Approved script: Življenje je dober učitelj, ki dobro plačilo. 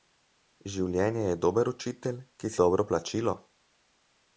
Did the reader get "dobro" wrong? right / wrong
right